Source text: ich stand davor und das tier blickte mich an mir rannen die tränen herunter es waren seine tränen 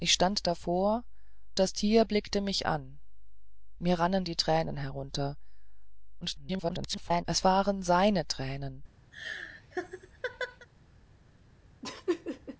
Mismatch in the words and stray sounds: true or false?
true